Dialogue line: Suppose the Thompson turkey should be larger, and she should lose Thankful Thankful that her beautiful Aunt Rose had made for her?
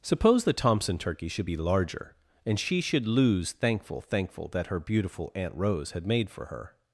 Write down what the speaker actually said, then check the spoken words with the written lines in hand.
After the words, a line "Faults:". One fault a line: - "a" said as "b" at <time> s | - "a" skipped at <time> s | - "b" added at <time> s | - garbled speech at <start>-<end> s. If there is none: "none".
Suppose the Thompson turkey should be larger, and she should lose Thankful Thankful that her beautiful Aunt Rose had made for her?
Faults:
none